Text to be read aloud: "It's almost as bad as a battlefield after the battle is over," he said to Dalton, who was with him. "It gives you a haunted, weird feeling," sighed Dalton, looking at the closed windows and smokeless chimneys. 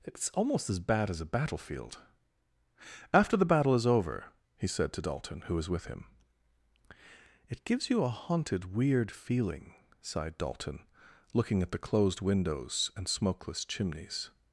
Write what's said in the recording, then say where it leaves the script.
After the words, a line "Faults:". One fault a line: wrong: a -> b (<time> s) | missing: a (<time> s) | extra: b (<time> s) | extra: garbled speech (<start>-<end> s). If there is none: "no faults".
"It's almost as bad as a battlefield after the battle is over," he said to Dalton, who was with him. "It gives you a haunted, weird feeling," sighed Dalton, looking at the closed windows and smokeless chimneys.
Faults:
no faults